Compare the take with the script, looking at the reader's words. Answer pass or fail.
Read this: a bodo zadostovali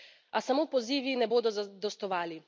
fail